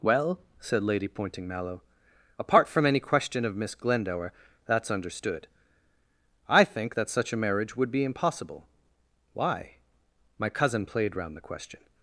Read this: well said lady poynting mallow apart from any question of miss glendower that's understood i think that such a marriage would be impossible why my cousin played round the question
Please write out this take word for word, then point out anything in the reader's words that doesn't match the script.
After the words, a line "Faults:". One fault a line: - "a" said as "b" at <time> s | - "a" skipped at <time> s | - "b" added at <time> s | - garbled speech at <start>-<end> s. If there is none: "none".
well said lady poynting mallow apart from any question of miss glendower that's understood i think that such a marriage would be impossible why my cousin played round the question
Faults:
none